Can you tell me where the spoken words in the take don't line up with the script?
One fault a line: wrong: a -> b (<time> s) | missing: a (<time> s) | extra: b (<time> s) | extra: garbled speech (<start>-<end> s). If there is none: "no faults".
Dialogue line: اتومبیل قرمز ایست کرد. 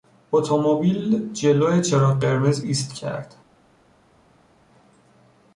extra: جلو چراغ (1.3 s)